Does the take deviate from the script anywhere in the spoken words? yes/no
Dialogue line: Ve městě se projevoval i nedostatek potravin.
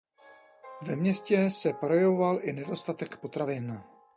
no